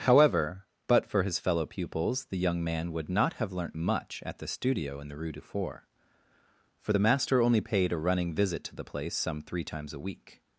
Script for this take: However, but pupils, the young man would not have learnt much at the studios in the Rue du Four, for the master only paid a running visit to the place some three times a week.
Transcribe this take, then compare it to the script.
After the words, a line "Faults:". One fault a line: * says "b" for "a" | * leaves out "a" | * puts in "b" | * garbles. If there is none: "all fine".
However, but for his fellow pupils, the young man would not have learnt much at the studio in the Rue du Four, for the master only paid a running visit to the place some three times a week.
Faults:
* puts in "for his fellow"
* says "studio" for "studios"